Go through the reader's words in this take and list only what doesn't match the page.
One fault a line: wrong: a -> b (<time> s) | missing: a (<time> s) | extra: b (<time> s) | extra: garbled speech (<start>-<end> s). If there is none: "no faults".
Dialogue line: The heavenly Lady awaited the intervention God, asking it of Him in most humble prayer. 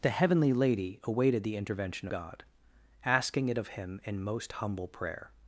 no faults